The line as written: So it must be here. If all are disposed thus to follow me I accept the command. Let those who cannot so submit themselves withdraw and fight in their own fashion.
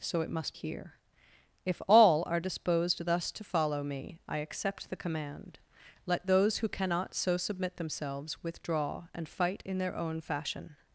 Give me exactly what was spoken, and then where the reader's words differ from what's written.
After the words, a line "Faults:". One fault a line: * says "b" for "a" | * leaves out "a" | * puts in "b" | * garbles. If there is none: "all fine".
So it must here. If all are disposed thus to follow me I accept the command. Let those who cannot so submit themselves withdraw and fight in their own fashion.
Faults:
* leaves out "be"